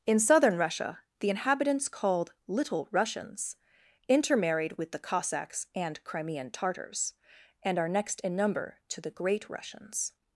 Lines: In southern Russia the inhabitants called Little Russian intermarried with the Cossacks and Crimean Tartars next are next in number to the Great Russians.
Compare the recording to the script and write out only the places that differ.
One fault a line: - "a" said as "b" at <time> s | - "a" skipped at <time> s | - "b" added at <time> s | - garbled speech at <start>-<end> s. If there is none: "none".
- "Russian" said as "Russians" at 2.9 s
- "next" said as "and" at 7.6 s